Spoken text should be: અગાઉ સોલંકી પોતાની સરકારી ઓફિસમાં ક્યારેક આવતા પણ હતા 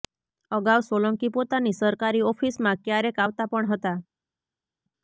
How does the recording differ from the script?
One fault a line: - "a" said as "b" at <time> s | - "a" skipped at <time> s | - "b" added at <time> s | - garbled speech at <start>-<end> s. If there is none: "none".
none